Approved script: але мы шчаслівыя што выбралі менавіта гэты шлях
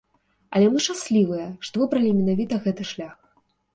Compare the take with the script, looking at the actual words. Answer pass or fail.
pass